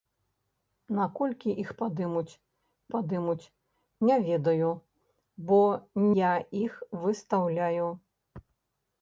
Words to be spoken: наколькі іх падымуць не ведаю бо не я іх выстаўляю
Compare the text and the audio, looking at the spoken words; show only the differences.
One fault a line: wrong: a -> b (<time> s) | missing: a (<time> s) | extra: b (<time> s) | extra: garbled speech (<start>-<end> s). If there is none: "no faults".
extra: падымуць (2.9 s)
missing: не (5.6 s)